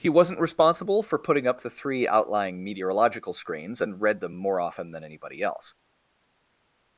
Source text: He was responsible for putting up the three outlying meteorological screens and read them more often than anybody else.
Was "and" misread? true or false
false